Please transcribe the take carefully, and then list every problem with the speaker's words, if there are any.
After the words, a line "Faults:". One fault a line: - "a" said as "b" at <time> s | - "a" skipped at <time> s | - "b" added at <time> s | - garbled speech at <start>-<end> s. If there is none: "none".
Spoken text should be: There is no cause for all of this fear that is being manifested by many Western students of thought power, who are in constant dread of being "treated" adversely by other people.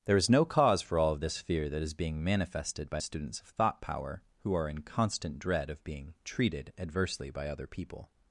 There is no cause for all of this fear that is being manifested by students of thought power, who are in constant dread of being "treated" adversely by other people.
Faults:
- "many Western" skipped at 3.0 s